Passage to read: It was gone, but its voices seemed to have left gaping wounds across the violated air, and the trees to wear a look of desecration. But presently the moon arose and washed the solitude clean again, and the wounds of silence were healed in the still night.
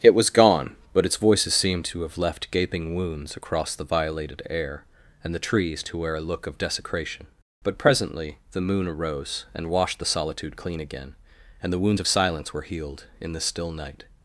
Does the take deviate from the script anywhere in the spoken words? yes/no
no